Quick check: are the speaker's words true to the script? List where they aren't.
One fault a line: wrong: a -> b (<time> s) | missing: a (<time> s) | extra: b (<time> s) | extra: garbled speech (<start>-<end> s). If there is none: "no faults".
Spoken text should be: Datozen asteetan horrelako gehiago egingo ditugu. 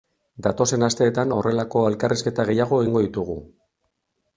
extra: elkarrizketa (1.9 s)